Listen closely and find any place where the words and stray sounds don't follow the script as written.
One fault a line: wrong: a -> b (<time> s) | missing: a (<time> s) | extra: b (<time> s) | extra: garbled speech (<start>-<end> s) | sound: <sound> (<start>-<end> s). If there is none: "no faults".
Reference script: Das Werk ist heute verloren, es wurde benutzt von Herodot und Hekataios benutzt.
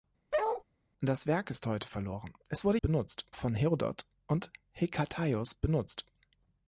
sound: bark (0.3-0.6 s)